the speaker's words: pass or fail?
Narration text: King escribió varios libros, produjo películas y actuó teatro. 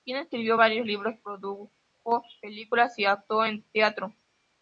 fail